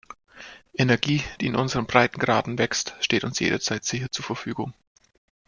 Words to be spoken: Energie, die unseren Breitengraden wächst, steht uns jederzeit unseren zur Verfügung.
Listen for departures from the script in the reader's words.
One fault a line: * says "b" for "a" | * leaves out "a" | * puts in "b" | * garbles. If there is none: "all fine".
* puts in "in"
* says "sicher" for "unseren"